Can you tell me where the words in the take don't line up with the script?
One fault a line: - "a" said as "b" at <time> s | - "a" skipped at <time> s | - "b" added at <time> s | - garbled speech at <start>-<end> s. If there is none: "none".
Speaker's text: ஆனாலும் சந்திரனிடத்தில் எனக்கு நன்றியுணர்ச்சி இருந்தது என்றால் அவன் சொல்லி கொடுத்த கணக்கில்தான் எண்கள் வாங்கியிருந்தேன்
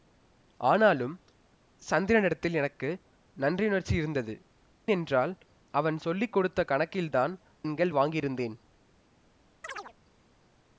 none